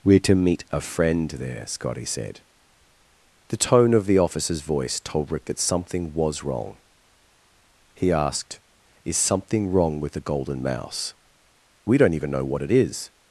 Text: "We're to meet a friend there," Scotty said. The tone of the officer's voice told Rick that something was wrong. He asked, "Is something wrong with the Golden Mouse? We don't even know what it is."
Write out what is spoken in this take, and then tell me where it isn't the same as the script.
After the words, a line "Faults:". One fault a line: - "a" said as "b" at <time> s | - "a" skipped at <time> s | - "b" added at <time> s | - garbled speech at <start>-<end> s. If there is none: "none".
"We're to meet a friend there," Scotty said. The tone of the officer's voice told Rick that something was wrong. He asked, "Is something wrong with the Golden Mouse? We don't even know what it is."
Faults:
none